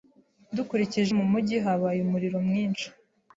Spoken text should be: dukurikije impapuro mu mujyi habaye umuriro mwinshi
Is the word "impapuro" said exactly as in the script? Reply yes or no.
no